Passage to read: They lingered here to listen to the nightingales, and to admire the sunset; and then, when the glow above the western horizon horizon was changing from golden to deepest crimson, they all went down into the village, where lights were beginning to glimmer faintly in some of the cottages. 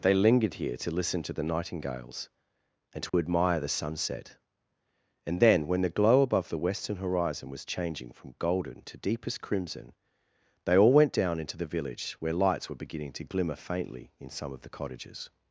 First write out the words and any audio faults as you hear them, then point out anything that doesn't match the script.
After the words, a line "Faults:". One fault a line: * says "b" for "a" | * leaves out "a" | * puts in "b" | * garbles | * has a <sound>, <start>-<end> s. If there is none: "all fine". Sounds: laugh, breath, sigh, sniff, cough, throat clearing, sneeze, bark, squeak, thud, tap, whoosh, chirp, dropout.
They lingered here to listen to the nightingales, and to admire the sunset; and then, when the glow above the western horizon was changing from golden to deepest crimson, they all went down into the village, where lights were beginning to glimmer faintly in some of the cottages.
Faults:
* has a dropout, 3.1-3.1 s
* leaves out "horizon"